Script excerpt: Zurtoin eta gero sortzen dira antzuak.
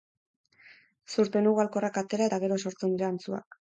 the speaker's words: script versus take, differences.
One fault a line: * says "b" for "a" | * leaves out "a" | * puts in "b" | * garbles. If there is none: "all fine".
* puts in "ugalkorrak atera"